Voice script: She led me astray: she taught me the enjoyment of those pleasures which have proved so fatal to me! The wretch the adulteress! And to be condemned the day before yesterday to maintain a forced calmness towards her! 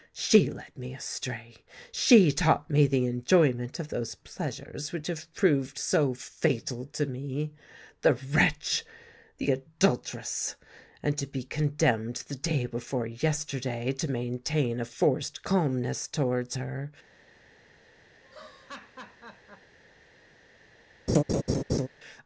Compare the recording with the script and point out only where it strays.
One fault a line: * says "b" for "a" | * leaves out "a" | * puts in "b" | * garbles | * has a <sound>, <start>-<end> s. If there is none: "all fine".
* has a laugh, 18.2-19.8 s
* has a laugh, 21.1-21.9 s